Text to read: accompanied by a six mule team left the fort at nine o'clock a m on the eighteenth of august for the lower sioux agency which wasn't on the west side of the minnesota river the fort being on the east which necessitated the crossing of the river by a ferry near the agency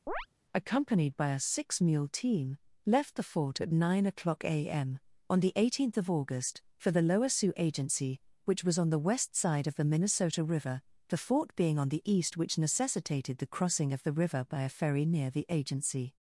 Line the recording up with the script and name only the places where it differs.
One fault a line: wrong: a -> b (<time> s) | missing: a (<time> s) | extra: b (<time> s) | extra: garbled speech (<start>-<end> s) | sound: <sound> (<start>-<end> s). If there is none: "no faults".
sound: chirp (0.1-0.3 s)
wrong: wasn't -> was (8.6 s)